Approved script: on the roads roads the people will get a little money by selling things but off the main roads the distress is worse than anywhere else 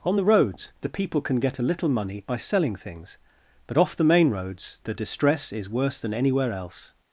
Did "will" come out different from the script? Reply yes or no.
yes